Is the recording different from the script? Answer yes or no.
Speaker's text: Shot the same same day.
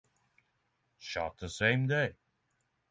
yes